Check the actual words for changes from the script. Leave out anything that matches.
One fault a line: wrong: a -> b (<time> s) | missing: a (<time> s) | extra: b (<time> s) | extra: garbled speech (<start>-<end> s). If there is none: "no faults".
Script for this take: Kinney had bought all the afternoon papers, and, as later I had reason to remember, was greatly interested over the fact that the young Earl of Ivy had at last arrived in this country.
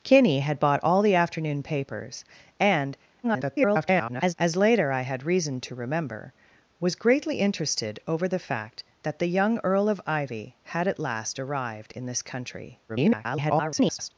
extra: garbled speech (3.2-4.3 s)
extra: garbled speech (12.9-14.1 s)